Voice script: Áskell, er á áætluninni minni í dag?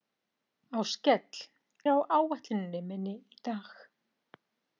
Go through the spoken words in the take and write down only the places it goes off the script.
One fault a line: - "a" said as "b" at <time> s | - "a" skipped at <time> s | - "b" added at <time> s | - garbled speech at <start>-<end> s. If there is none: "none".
none